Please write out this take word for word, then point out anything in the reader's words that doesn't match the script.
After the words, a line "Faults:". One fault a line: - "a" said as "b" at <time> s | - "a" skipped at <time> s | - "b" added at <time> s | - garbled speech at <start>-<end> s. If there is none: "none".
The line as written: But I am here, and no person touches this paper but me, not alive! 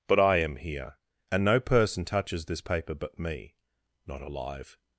But I am here, and no person touches this paper but me, not alive!
Faults:
none